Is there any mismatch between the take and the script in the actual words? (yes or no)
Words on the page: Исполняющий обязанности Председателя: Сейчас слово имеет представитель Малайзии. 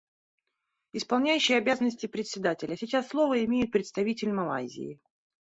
no